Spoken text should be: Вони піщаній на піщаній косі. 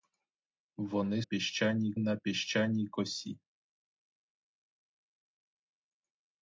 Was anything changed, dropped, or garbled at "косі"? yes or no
no